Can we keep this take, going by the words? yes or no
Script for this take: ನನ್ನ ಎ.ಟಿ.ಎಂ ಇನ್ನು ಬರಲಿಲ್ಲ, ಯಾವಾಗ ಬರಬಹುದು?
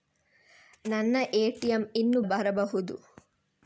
no